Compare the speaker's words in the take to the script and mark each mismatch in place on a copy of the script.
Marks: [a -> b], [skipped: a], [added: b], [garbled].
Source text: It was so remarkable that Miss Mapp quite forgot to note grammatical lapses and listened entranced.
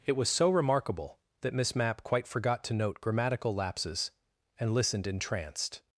It was so remarkable that Miss Mapp quite forgot to note grammatical lapses and listened entranced.